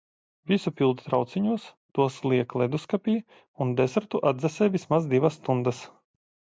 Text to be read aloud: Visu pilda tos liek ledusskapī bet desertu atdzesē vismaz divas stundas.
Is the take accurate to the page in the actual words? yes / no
no